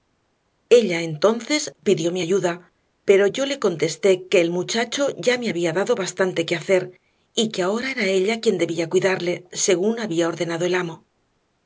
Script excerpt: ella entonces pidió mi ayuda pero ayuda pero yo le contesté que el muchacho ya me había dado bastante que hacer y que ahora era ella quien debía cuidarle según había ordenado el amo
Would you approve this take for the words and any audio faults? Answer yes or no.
no